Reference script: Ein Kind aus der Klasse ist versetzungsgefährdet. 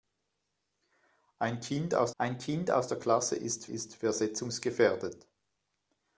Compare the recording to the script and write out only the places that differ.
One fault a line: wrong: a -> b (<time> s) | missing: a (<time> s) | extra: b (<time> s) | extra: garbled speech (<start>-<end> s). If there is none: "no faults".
extra: ein Kind aus (2.2 s)
extra: ist (3.6 s)